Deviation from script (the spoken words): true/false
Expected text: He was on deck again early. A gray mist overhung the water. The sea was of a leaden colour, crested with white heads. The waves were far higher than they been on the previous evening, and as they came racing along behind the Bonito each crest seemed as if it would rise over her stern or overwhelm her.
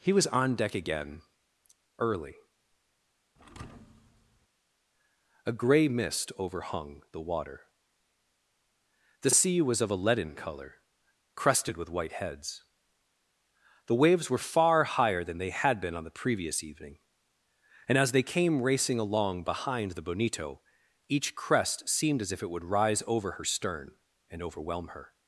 true